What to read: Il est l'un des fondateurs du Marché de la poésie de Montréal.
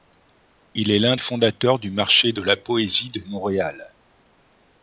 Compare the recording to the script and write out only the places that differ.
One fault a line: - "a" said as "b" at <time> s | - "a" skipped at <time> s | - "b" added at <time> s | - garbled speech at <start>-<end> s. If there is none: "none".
- "des" skipped at 1.1 s